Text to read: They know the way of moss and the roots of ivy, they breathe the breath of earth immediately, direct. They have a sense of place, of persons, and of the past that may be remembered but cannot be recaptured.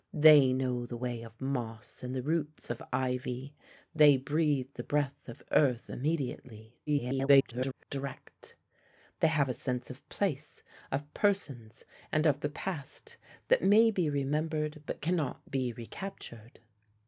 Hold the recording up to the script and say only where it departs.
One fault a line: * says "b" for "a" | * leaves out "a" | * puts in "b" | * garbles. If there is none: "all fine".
* garbles